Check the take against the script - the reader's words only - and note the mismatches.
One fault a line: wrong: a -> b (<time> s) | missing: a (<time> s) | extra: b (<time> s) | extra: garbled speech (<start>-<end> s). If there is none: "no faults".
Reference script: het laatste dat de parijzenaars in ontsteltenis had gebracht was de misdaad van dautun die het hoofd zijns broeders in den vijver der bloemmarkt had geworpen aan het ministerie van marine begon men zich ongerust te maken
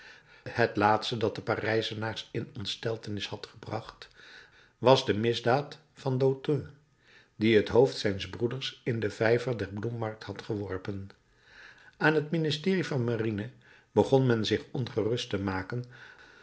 no faults